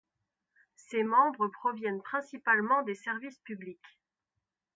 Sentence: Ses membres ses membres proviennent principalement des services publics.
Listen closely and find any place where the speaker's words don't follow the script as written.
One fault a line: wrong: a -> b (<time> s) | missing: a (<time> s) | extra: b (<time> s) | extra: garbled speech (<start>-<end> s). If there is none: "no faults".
missing: ses membres (1.5 s)